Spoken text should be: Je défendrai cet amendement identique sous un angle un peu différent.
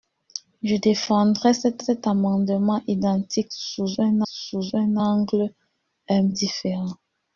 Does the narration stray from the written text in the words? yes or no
yes